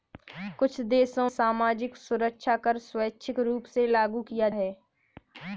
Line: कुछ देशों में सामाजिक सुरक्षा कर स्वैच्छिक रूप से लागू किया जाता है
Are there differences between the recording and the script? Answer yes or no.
yes